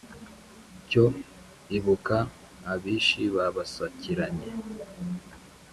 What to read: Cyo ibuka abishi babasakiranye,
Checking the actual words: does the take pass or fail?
pass